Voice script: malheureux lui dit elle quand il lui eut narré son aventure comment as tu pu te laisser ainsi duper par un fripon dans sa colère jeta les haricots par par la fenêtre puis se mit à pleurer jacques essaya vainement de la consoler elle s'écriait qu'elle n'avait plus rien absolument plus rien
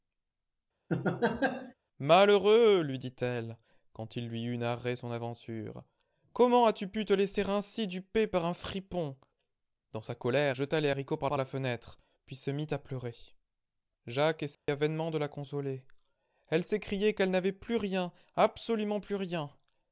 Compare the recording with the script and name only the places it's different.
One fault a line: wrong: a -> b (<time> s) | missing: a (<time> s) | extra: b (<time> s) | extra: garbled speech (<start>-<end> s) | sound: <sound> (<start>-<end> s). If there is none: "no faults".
sound: laugh (0.9-1.7 s)
sound: dropout (14.5-14.7 s)